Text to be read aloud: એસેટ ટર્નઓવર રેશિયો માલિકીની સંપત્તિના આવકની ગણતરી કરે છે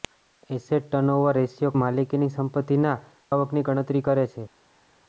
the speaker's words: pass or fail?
pass